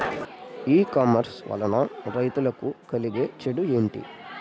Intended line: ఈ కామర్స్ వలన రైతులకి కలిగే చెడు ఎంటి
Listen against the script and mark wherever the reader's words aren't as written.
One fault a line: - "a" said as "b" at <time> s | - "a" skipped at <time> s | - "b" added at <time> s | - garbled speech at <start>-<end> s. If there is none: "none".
none